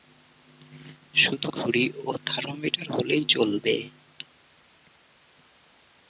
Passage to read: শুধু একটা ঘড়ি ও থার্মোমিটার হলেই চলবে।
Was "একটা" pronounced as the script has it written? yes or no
no